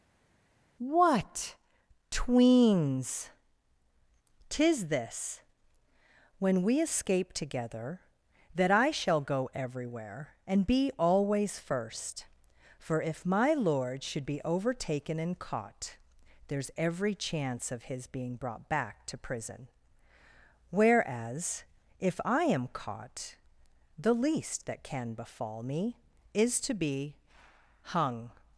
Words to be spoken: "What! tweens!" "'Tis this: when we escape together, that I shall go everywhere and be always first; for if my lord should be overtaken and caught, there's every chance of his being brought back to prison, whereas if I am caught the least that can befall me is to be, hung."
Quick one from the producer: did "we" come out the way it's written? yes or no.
yes